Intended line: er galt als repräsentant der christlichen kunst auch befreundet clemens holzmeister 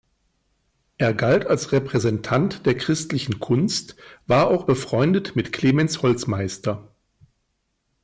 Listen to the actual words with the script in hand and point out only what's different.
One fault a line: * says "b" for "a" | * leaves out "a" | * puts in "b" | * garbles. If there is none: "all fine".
* puts in "war"
* puts in "mit"